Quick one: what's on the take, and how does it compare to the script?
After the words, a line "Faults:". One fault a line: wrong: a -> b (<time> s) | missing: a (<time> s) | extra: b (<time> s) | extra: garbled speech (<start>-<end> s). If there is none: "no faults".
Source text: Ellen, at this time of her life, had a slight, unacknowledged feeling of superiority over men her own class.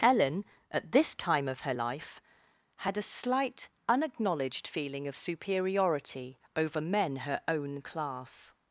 Ellen, at this time of her life, had a slight, unacknowledged feeling of superiority over men her own class.
Faults:
no faults